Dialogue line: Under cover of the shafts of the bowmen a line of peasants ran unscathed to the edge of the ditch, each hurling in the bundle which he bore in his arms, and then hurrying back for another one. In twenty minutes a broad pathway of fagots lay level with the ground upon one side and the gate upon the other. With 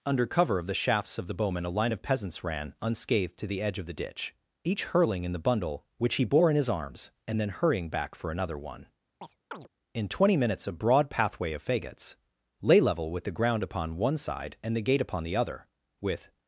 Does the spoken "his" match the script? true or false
true